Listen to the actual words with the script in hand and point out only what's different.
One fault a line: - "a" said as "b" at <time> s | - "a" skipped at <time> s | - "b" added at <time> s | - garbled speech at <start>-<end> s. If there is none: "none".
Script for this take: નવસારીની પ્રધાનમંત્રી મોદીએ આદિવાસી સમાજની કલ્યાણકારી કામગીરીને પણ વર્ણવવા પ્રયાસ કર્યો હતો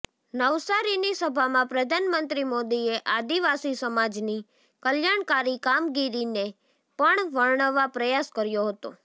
- "સભામાં" added at 1.2 s